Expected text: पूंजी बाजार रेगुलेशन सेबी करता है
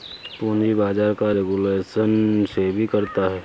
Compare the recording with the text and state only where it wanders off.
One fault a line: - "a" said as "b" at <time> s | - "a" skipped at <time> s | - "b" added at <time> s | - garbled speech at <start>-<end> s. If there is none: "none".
- "का" added at 1.1 s